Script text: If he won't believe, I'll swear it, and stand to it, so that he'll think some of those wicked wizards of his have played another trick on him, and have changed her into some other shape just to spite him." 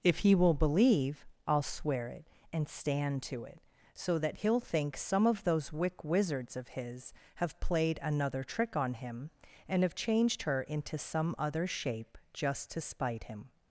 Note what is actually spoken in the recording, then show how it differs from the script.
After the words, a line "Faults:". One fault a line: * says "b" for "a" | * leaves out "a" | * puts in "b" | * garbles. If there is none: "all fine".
If he will believe, I'll swear it, and stand to it, so that he'll think some of those wick wizards of his have played another trick on him, and have changed her into some other shape just to spite him."
Faults:
* says "will" for "won't"
* says "wick" for "wicked"